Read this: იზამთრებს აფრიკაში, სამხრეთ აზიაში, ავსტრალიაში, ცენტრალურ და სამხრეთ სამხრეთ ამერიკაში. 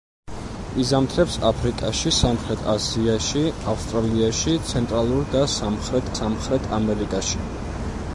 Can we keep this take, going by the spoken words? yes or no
yes